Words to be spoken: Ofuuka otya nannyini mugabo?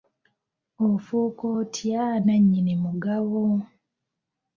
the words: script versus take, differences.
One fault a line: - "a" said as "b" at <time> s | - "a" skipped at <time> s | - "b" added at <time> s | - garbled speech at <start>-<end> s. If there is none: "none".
none